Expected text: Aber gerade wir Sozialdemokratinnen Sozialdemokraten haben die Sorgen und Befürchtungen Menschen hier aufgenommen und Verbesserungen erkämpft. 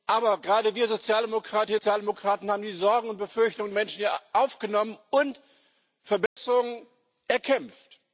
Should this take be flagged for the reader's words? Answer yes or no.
no